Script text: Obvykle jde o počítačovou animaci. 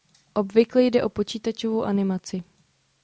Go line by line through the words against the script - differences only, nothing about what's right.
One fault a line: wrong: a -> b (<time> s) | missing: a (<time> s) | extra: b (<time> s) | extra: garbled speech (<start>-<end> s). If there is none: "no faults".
no faults